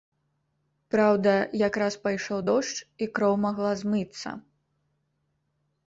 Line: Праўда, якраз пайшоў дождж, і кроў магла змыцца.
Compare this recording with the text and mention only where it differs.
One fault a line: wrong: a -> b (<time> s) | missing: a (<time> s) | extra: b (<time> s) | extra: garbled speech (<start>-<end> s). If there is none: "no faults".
no faults